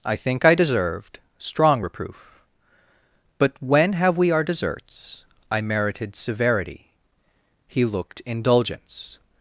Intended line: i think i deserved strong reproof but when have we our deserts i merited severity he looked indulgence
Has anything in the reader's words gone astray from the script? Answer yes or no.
no